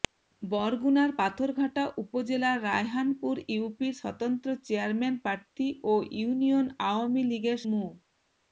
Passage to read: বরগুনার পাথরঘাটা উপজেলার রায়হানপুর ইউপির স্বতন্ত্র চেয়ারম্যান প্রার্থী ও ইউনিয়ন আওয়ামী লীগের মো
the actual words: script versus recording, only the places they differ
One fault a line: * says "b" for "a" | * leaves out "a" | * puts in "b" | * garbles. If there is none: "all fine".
all fine